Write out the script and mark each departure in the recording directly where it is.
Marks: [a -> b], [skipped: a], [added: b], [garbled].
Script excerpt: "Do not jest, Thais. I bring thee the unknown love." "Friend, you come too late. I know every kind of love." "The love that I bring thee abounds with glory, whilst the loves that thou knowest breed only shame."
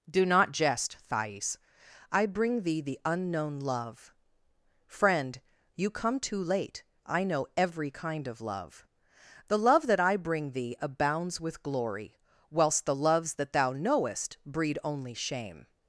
"Do not jest, Thais. I bring thee the unknown love." "Friend, you come too late. I know every kind of love." "The love that I bring thee abounds with glory, whilst the loves that thou knowest breed only shame."